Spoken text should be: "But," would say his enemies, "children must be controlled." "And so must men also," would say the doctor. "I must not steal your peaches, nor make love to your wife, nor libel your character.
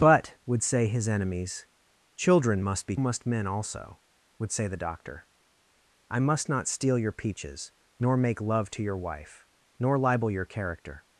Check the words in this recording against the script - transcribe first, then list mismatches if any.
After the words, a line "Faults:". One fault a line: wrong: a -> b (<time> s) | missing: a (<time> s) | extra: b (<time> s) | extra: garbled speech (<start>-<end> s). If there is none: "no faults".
"But," would say his enemies, "children must be must men also," would say the doctor. "I must not steal your peaches, nor make love to your wife, nor libel your character.
Faults:
missing: controlled And so (2.9 s)